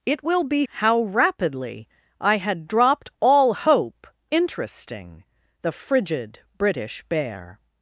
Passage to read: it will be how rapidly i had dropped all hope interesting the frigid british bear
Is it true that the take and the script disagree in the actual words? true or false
false